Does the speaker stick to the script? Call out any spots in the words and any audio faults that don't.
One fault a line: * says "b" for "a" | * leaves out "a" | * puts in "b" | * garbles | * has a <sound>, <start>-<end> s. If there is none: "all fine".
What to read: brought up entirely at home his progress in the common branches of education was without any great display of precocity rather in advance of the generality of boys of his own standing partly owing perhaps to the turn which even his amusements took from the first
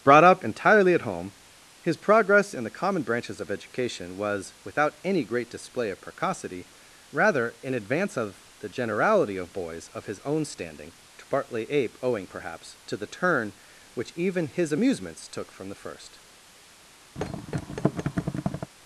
* puts in "to"
* puts in "ape"
* has a thud, 17.2-18.7 s